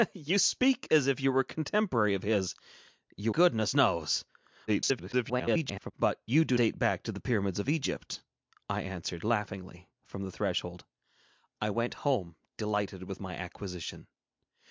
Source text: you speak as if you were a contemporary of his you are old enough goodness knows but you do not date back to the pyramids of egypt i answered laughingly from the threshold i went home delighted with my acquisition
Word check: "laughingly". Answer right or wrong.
right